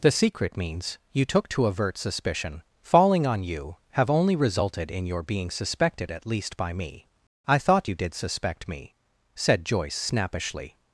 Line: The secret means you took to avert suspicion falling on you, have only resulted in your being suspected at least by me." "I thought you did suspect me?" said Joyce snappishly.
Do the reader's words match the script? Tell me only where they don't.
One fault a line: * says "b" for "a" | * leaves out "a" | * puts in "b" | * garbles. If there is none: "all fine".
all fine